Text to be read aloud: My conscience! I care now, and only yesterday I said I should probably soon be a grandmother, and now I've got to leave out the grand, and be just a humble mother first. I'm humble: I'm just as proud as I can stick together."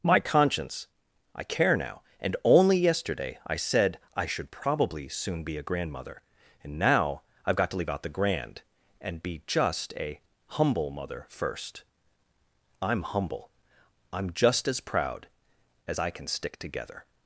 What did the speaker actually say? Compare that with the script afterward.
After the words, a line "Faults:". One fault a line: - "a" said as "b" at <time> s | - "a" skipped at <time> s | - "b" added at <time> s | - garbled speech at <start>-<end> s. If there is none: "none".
My conscience! I care now, and only yesterday I said I should probably soon be a grandmother, and now I've got to leave out the grand, and be just a humble mother first. I'm humble: I'm just as proud as I can stick together."
Faults:
none